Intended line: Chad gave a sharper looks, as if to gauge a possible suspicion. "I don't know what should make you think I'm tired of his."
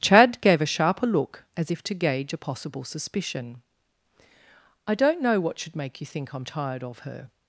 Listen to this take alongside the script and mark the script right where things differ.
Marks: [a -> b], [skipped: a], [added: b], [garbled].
Chad gave a sharper [looks, -> look] as if to gauge a possible suspicion. "I don't know what should make you think I'm tired of [his." -> her]